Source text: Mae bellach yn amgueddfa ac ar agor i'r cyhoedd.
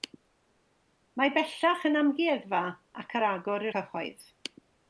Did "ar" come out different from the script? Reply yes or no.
no